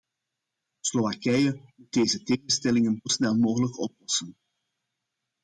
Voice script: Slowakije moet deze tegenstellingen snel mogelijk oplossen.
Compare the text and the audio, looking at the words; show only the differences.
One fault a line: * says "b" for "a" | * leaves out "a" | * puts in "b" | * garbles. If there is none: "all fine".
all fine